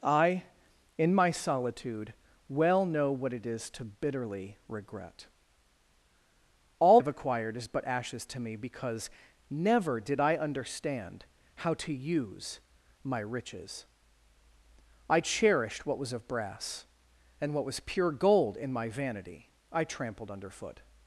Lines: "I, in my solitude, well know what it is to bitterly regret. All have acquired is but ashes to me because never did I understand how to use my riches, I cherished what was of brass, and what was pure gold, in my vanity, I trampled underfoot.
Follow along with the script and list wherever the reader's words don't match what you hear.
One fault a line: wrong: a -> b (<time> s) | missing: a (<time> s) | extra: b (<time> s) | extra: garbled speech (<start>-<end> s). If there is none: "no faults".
no faults